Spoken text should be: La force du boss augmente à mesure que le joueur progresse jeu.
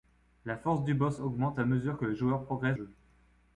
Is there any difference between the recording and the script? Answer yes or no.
no